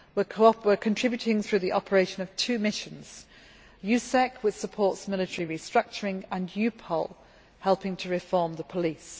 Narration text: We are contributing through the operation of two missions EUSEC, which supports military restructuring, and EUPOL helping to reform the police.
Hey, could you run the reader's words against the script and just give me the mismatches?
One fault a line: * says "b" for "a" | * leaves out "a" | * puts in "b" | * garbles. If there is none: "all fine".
all fine